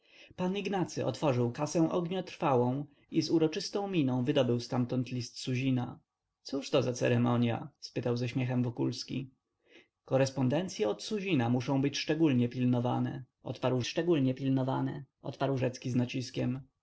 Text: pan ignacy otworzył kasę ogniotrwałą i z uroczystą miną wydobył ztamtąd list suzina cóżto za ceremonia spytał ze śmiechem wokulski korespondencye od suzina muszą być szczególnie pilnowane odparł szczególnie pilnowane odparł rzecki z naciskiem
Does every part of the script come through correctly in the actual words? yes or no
yes